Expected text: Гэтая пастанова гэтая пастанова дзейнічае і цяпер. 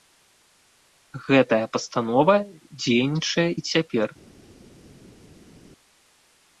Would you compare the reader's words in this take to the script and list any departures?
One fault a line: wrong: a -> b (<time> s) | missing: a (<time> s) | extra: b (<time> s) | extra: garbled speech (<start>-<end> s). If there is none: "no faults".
missing: гэтая пастанова (2.4 s)